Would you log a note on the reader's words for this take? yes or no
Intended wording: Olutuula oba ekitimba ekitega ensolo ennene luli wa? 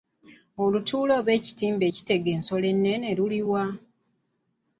no